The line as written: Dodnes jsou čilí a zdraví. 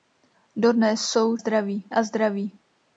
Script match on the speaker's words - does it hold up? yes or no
no